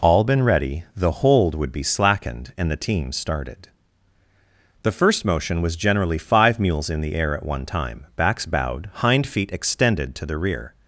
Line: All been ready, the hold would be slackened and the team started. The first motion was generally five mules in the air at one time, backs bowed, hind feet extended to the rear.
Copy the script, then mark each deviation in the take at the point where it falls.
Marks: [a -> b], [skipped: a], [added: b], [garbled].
All been ready, the hold would be slackened and the team started. The first motion was generally five mules in the air at one time, backs bowed, hind feet extended to the rear.